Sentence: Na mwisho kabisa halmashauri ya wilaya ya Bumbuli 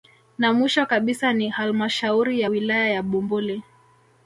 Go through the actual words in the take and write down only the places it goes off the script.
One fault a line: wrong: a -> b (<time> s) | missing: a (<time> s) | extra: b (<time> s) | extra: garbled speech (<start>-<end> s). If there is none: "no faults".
extra: ni (1.3 s)